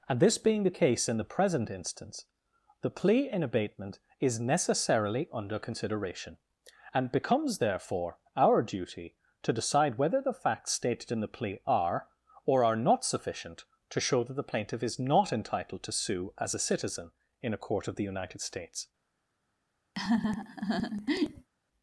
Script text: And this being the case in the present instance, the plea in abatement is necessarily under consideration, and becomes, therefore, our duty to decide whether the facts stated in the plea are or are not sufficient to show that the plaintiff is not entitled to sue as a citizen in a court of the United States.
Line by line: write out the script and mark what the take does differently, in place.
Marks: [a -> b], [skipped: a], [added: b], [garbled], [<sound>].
And this being the case in the present instance, the plea in abatement is necessarily under consideration, and becomes, therefore, our duty to decide whether the facts stated in the plea are or are not sufficient to show that the plaintiff is not entitled to sue as a citizen in a court of the United States. [laugh]